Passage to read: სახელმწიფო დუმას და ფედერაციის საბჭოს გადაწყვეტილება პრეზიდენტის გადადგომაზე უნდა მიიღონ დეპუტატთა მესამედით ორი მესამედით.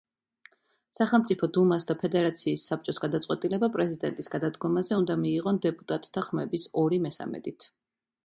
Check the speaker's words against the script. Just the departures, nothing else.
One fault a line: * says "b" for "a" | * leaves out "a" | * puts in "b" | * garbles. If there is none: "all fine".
* says "ხმების" for "მესამედით"